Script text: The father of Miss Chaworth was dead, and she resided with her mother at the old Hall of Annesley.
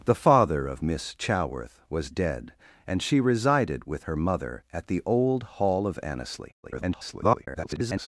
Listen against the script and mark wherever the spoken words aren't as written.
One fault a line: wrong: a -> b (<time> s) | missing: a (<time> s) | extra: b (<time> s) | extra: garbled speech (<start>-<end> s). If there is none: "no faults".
extra: garbled speech (6.6-8.1 s)